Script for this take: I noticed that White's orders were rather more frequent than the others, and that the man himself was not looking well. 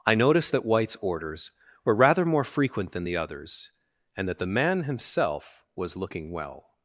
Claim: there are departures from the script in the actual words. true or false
true